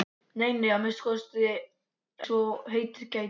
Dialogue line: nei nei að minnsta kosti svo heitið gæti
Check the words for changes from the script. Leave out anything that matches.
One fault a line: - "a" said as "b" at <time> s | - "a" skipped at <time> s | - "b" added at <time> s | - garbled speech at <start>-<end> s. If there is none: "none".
none